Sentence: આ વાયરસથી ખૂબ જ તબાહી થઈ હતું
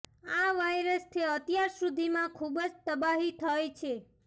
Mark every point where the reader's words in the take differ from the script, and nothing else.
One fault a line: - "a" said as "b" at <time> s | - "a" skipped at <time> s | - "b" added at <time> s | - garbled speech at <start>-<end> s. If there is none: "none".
- "અત્યાર સુધીમાં" added at 1.3 s
- "હતું" said as "છે" at 3.8 s